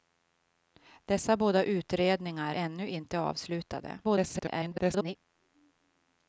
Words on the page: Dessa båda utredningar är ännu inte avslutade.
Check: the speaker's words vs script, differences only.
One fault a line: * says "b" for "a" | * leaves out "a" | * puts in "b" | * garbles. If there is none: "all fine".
* leaves out "är"
* garbles